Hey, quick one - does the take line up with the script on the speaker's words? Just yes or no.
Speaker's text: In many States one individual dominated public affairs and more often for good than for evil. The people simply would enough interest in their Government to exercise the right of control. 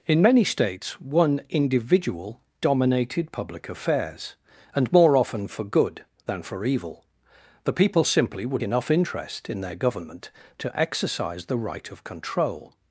yes